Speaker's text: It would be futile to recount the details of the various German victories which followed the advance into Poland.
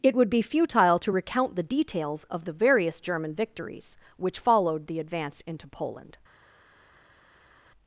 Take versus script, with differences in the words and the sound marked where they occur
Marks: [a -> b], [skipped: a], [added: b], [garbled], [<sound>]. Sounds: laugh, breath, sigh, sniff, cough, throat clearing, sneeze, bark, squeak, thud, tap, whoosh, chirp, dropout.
It would be futile to recount the details of the various German victories which followed the advance into Poland.